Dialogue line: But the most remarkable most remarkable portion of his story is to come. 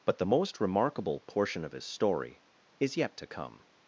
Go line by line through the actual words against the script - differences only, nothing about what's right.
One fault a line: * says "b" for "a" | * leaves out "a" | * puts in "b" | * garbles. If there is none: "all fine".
* leaves out "most remarkable"
* puts in "yet"